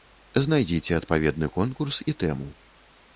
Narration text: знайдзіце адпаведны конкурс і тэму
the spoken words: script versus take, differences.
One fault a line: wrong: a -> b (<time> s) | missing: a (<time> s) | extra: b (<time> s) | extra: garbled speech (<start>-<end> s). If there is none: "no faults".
no faults